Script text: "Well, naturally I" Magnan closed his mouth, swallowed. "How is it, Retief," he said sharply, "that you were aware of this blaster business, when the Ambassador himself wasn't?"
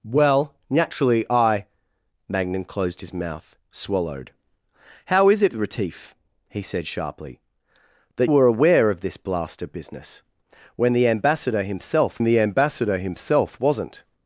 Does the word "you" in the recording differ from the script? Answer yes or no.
yes